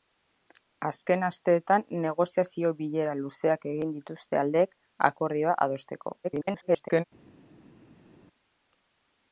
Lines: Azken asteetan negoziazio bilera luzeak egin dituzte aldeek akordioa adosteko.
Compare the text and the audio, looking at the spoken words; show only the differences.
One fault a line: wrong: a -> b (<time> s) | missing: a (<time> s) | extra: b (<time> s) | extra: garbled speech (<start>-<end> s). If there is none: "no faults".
extra: garbled speech (6.2-7.0 s)